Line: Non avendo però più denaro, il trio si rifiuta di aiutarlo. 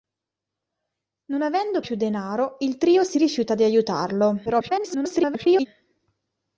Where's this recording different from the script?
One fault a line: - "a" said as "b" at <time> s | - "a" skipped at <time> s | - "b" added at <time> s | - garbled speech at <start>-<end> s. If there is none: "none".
- "però" skipped at 1.8 s
- garbled speech at 4.5-5.7 s